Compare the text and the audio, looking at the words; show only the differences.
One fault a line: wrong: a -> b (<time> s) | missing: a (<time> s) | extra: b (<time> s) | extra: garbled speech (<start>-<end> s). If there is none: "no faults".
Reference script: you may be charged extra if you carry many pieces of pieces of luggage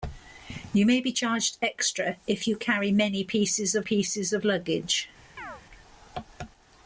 no faults